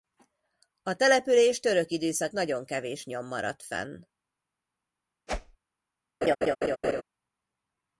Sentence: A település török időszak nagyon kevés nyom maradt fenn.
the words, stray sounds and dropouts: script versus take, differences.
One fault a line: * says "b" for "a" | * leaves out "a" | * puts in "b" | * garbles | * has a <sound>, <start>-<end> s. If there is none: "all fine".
* has a whoosh, 5.3-5.6 s
* has a laugh, 6.2-7.0 s